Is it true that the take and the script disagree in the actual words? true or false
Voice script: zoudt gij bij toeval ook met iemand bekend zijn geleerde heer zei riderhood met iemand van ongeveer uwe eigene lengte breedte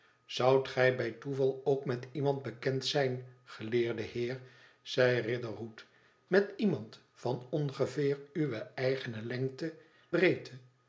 false